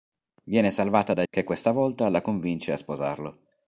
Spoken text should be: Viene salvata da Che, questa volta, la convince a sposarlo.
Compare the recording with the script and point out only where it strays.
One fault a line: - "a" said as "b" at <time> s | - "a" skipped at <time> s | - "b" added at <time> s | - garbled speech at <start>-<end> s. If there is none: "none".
none